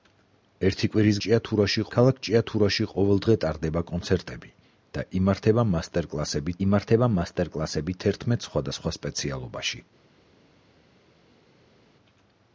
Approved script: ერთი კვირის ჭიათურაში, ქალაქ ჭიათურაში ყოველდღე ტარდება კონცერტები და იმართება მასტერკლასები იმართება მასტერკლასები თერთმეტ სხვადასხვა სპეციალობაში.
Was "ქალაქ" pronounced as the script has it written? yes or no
yes